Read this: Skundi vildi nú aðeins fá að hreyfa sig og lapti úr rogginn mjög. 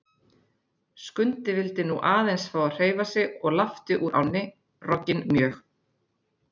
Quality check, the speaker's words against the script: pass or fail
fail